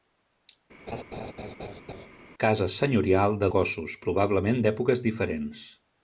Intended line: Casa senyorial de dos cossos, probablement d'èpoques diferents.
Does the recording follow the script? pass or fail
fail